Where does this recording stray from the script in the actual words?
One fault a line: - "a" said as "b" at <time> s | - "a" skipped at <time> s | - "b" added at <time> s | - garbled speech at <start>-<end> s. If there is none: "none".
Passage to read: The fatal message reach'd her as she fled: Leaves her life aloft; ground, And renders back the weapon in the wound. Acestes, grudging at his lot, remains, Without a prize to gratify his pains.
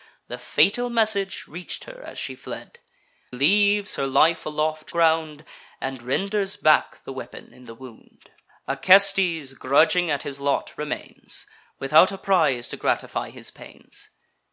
none